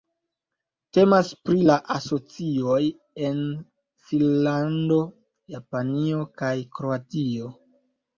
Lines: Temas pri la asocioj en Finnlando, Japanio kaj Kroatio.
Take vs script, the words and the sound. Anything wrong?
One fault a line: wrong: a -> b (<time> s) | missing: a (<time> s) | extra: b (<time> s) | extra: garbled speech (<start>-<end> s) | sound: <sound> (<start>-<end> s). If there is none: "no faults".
no faults